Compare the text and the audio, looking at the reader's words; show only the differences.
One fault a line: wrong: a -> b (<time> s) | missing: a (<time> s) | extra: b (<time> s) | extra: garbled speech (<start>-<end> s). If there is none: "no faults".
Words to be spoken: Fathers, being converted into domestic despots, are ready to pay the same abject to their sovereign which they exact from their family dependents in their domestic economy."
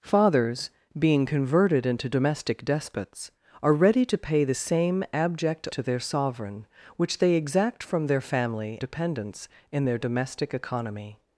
no faults